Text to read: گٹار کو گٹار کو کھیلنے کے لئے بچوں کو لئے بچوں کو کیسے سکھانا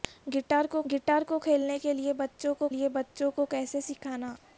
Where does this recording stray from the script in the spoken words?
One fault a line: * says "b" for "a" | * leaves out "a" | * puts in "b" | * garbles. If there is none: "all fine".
all fine